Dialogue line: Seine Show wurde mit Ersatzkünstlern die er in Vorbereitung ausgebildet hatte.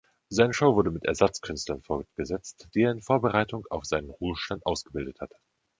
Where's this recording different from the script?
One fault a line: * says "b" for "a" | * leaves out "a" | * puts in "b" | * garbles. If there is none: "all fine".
* puts in "fortgesetzt"
* puts in "auf seinen Ruhestand"